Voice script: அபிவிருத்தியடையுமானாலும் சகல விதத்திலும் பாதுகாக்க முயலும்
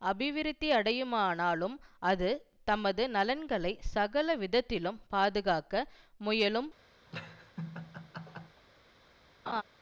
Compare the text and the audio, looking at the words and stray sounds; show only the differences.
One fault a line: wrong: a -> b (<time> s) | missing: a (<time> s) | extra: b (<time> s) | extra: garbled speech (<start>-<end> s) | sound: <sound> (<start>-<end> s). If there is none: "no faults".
extra: அது தமது நலன்களை (2.0 s)
sound: laugh (7.1-8.6 s)
sound: laugh (9.5-9.6 s)